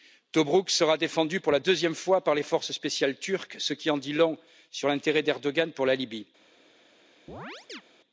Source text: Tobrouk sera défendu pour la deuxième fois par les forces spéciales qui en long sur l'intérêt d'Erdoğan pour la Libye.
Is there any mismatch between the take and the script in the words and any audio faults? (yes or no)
yes